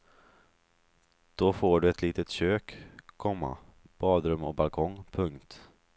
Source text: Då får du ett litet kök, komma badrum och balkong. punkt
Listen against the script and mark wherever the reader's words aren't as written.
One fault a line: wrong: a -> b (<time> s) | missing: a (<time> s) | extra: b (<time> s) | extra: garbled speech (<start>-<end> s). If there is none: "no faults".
no faults